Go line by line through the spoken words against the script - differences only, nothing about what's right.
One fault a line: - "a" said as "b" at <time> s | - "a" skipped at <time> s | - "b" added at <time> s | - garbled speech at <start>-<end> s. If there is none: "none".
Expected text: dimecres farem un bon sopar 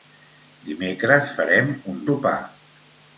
- "bon" skipped at 2.0 s